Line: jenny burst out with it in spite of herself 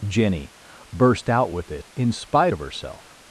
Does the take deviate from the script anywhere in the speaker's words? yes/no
no